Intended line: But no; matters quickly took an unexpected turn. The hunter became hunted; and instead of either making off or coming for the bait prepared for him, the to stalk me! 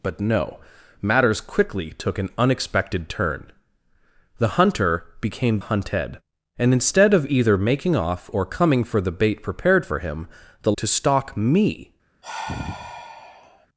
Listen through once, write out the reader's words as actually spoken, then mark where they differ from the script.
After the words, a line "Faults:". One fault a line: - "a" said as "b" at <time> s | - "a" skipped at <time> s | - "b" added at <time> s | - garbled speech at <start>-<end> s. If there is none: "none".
But no; matters quickly took an unexpected turn. The hunter became hunted; and instead of either making off or coming for the bait prepared for him, the to stalk me!
Faults:
none